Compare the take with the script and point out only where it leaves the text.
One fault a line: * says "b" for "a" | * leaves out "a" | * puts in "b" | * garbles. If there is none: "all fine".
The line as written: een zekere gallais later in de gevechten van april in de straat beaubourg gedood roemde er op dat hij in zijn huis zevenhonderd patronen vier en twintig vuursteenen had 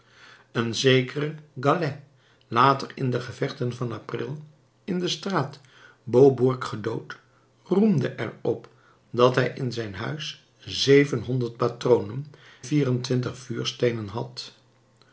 all fine